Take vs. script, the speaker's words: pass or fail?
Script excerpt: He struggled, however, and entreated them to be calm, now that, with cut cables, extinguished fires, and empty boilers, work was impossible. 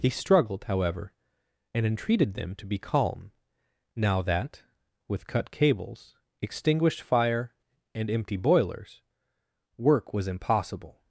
fail